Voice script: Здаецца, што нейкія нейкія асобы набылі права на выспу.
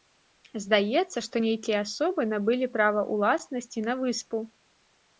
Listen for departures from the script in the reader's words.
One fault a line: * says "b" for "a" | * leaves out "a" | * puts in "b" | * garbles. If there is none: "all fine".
* leaves out "нейкія"
* puts in "ўласнасці"